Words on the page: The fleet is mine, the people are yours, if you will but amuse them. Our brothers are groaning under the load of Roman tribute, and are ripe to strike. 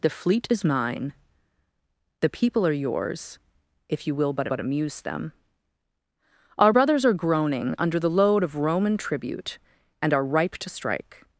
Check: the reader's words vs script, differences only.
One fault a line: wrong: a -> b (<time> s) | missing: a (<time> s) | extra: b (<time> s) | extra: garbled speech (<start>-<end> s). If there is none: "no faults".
extra: but (4.5 s)